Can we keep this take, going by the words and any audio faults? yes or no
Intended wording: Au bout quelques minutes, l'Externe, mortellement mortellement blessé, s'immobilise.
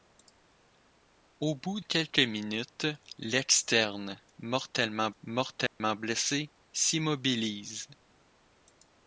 no